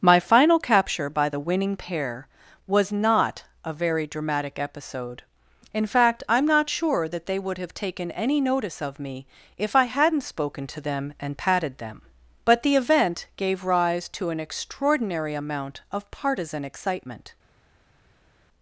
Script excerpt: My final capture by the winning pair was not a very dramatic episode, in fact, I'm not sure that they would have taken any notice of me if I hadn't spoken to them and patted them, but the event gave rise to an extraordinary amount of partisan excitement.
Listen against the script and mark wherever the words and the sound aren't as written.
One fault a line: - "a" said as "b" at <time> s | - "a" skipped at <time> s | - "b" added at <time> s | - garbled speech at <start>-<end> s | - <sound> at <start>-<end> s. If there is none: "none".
none